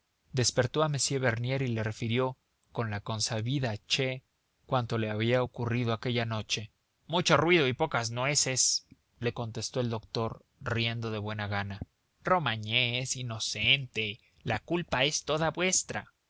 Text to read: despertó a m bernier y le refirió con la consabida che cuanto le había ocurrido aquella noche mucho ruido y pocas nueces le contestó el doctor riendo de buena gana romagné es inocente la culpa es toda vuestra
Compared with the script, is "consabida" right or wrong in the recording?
right